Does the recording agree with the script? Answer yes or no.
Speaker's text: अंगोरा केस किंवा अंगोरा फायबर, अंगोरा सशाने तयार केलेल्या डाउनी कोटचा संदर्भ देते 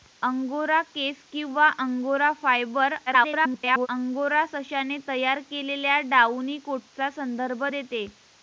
no